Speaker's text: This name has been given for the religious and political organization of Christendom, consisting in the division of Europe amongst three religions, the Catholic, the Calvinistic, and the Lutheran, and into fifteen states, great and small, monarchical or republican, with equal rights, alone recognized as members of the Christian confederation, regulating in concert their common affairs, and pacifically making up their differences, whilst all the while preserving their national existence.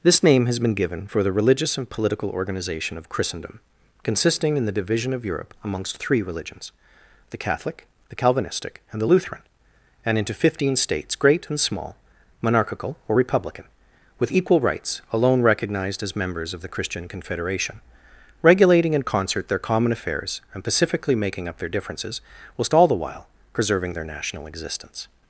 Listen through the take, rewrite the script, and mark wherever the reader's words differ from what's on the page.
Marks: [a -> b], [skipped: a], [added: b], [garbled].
This name has been given for the religious and political organization of Christendom, consisting in the division of Europe amongst three religions, the Catholic, the Calvinistic, and the Lutheran, and into fifteen states, great and small, monarchical or republican, with equal rights, alone recognized as members of the Christian confederation, regulating in concert their common affairs, and pacifically making up their differences, whilst all the while preserving their national existence.